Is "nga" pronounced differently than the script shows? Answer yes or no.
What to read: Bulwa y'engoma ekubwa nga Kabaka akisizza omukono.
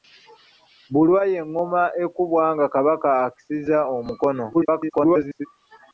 no